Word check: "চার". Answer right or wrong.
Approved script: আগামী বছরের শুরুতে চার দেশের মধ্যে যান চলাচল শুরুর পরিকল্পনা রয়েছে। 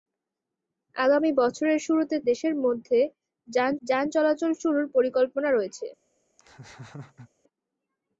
wrong